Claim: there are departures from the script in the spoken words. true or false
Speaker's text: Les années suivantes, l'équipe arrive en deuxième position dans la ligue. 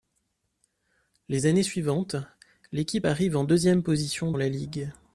true